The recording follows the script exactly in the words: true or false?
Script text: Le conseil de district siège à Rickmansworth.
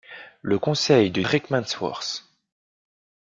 false